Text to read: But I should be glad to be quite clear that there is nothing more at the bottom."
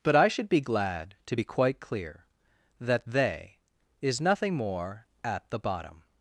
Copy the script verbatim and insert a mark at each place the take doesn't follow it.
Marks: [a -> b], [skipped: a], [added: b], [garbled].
But I should be glad to be quite clear that [there -> they] is nothing more at the bottom."